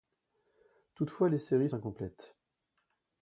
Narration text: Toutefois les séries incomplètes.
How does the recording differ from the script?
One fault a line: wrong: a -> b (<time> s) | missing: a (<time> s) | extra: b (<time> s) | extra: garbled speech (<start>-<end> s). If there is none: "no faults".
no faults